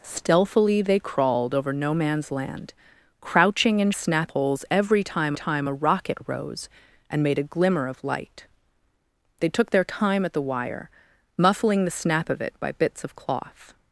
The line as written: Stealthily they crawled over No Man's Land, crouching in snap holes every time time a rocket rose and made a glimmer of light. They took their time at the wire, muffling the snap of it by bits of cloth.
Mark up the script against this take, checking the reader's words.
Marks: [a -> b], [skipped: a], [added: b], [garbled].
Stealthily they crawled over No Man's Land, crouching in snap holes every time time a rocket rose and made a glimmer of light. They took their time at the wire, muffling the snap of it by bits of cloth.